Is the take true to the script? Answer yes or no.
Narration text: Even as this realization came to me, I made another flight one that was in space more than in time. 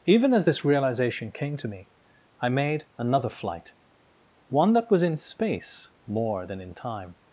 yes